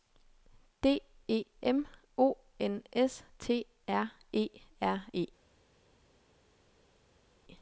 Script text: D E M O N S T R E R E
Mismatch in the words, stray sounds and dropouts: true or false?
false